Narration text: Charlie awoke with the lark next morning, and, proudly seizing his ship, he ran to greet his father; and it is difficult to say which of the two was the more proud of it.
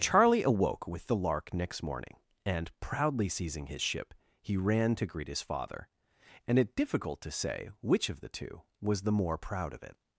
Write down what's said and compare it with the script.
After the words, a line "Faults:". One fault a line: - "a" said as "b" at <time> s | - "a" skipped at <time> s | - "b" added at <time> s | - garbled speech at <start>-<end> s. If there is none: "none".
Charlie awoke with the lark next morning, and, proudly seizing his ship, he ran to greet his father; and it difficult to say which of the two was the more proud of it.
Faults:
- "is" skipped at 6.7 s